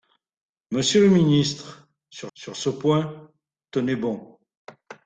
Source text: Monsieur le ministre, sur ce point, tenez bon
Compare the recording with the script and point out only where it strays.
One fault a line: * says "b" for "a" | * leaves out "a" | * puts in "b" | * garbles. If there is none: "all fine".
* puts in "sur"